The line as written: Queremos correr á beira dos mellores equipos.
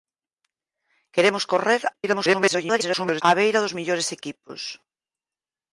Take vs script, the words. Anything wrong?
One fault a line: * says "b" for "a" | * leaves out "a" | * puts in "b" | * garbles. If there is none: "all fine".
* garbles